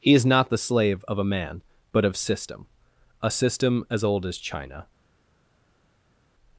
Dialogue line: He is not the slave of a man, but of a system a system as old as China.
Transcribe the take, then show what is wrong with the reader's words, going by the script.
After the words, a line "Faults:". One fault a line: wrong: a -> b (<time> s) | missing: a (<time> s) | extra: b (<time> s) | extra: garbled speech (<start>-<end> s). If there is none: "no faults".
He is not the slave of a man, but of system a system as old as China.
Faults:
missing: a (2.2 s)